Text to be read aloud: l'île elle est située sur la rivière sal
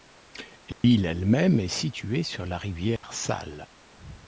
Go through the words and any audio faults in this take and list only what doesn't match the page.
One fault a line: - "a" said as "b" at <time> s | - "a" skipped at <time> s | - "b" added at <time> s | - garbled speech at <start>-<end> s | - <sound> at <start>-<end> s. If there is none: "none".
- dropout at 0.7-0.8 s
- "même" added at 1.2 s
- dropout at 3.0-3.0 s